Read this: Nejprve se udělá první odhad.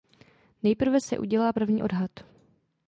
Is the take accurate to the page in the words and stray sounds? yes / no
yes